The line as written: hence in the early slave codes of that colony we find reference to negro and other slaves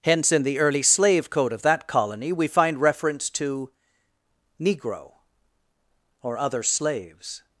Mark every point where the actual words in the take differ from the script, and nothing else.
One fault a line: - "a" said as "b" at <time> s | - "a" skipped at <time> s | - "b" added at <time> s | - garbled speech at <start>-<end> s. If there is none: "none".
- "codes" said as "code" at 1.3 s
- "and" said as "or" at 6.2 s